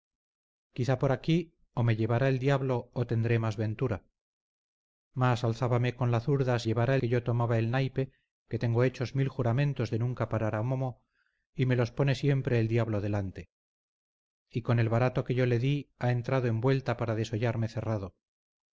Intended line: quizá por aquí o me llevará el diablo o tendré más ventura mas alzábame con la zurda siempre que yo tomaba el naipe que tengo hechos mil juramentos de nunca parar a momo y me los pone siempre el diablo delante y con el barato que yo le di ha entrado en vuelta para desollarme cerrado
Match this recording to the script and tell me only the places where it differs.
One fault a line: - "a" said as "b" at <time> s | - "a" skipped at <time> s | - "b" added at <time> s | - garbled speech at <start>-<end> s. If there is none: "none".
- "siempre" said as "llevará" at 6.7 s